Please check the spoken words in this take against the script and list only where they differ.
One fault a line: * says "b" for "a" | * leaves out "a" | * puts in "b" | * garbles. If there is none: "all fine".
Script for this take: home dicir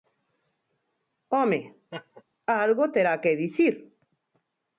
* puts in "algo terá que"